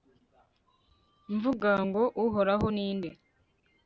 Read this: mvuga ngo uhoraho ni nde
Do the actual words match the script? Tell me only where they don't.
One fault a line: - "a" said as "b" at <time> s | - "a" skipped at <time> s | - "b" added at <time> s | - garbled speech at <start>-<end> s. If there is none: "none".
none